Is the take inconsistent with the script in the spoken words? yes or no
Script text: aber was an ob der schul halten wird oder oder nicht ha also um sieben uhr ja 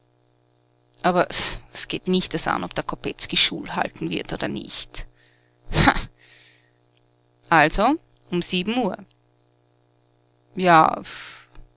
yes